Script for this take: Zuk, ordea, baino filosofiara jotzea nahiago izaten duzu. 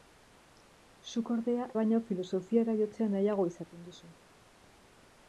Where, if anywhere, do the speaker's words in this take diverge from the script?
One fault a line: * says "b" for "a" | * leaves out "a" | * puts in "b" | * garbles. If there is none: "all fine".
all fine